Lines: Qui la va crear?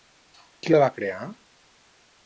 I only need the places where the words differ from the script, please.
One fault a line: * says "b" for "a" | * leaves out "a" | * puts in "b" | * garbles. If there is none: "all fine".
all fine